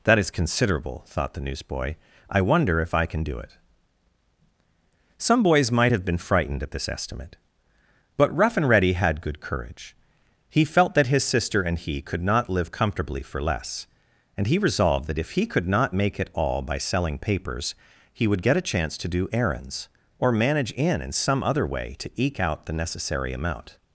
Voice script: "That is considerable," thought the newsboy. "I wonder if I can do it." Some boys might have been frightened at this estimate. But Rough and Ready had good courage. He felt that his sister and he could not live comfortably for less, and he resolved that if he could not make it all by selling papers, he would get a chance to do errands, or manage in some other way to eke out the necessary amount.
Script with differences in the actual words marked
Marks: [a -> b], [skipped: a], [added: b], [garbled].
"That is considerable," thought the newsboy. "I wonder if I can do it." Some boys might have been frightened at this estimate. But Rough and Ready had good courage. He felt that his sister and he could not live comfortably for less, and he resolved that if he could not make it all by selling papers, he would get a chance to do errands, or manage in [added: in] some other way to eke out the necessary amount.